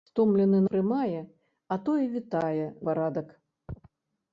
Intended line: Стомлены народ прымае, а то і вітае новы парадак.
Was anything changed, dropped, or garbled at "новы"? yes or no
yes